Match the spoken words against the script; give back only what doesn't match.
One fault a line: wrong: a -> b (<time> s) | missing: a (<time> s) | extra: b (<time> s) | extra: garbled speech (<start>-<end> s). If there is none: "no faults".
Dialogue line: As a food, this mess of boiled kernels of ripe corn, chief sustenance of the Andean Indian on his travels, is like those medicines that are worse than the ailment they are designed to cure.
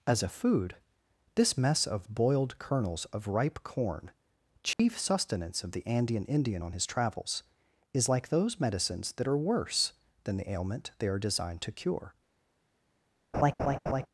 no faults